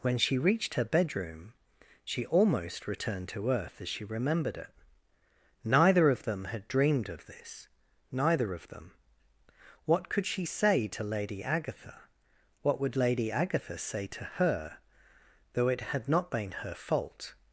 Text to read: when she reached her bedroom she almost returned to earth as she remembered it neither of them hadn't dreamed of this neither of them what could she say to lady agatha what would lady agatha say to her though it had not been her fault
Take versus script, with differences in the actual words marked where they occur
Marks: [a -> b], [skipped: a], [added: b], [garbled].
when she reached her bedroom she almost returned to earth as she remembered it neither of them [hadn't -> had] dreamed of this neither of them what could she say to lady agatha what would lady agatha say to her though it had not been her fault